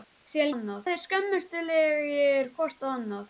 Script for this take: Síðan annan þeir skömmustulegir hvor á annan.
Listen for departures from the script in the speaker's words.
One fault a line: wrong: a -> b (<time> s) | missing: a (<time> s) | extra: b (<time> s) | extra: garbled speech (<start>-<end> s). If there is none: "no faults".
no faults